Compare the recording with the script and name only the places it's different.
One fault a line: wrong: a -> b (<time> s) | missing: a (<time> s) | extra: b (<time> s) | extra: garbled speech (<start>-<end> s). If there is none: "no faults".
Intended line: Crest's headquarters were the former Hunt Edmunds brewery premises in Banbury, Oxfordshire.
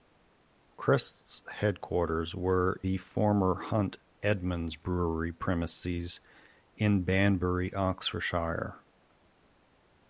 no faults